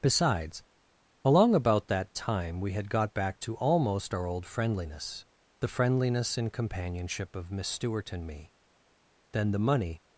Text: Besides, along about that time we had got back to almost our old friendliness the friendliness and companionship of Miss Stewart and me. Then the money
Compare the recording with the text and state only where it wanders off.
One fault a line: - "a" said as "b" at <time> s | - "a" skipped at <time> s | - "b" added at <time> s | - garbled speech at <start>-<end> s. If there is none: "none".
none